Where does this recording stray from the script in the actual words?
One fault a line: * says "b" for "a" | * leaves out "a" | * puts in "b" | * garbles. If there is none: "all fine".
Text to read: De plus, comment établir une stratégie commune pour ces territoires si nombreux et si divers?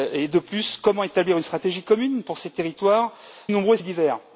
* leaves out "si"
* leaves out "si"